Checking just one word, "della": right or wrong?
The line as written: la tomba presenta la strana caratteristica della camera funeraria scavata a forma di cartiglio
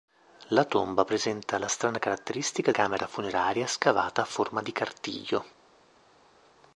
wrong